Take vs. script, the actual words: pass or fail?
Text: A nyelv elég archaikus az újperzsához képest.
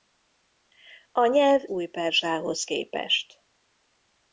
fail